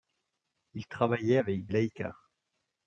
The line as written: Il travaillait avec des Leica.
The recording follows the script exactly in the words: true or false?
false